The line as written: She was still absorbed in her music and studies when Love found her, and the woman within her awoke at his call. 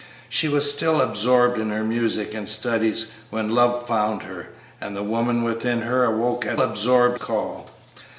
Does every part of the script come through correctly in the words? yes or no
no